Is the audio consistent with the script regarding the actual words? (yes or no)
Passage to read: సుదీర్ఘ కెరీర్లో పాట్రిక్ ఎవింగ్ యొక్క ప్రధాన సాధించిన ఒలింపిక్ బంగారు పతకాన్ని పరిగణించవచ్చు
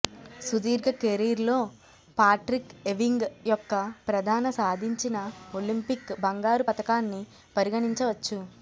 yes